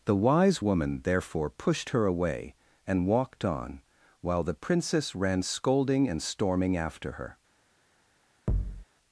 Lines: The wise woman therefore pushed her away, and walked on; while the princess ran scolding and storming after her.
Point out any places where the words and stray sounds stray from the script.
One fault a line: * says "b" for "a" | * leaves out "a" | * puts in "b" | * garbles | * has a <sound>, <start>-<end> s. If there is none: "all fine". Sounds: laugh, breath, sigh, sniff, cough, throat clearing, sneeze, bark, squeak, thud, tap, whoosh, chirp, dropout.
* has a thud, 8.5-8.8 s